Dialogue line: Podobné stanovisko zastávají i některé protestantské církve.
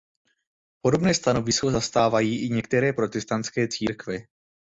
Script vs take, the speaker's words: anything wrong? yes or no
no